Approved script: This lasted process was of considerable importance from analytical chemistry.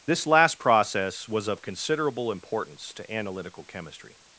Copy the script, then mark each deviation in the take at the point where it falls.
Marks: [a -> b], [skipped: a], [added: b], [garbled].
This [lasted -> last] process was of considerable importance [from -> to] analytical chemistry.